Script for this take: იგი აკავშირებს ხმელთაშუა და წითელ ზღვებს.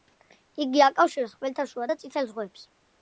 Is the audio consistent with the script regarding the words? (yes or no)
yes